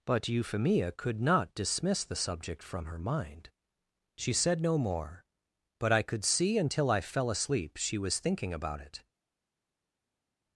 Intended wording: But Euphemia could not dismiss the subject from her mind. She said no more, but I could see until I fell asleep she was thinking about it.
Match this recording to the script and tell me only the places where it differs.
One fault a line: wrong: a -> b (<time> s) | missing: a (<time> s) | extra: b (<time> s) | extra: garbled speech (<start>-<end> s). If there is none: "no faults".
no faults